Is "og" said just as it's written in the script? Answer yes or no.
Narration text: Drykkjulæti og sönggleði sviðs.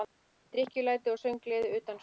yes